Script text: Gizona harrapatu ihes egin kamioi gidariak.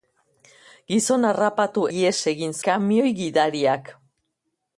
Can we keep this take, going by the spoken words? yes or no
yes